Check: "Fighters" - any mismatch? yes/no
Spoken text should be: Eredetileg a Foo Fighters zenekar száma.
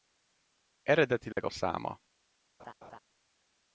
yes